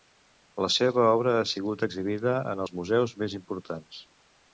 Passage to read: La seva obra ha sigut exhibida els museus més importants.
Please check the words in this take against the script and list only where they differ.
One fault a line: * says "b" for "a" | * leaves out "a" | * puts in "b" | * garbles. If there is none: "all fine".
* puts in "en"